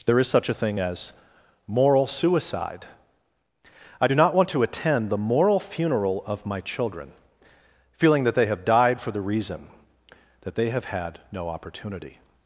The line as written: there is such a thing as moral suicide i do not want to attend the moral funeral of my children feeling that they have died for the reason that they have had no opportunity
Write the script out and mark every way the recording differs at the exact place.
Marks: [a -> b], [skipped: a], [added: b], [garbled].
there is such a thing as moral suicide i do not want to attend the moral funeral of my children feeling that they have died for the reason that they have had no opportunity